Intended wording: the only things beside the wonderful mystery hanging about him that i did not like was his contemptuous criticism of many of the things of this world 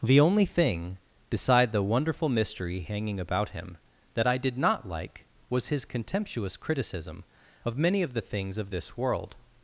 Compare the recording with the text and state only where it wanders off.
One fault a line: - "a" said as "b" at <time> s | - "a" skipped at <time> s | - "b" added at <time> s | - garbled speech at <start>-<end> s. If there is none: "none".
- "things" said as "thing" at 0.5 s